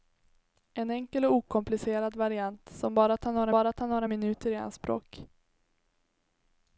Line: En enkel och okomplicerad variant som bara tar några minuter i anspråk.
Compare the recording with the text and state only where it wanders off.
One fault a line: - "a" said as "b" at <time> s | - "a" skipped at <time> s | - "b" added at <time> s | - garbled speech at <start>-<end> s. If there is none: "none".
- "bara tar några" added at 3.5 s